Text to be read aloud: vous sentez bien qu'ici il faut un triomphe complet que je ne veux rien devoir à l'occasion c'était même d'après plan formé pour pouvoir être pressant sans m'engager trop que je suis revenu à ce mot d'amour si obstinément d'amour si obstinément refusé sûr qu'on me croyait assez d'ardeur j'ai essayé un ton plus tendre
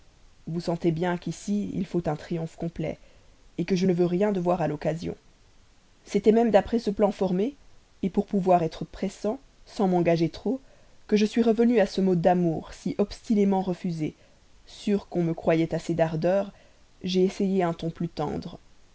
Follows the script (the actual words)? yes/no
no